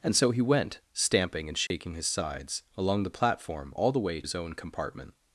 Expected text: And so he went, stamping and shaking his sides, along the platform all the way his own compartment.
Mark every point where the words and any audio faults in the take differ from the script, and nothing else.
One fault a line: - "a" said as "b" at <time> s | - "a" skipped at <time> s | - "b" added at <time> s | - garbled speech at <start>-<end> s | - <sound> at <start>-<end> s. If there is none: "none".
- dropout at 1.7-1.7 s